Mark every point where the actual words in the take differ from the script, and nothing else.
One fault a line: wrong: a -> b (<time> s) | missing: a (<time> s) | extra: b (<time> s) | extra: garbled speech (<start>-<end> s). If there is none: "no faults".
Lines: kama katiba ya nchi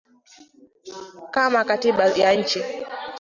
no faults